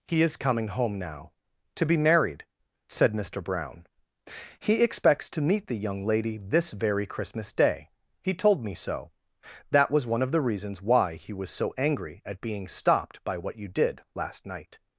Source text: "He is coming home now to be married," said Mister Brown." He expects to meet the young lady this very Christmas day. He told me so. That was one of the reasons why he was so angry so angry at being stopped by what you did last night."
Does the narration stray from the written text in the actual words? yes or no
yes